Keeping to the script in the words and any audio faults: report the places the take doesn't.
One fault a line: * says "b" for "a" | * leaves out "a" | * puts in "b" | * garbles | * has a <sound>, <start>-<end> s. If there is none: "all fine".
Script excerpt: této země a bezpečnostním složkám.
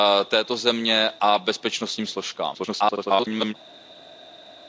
* garbles